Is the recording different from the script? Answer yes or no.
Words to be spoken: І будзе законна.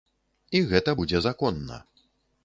yes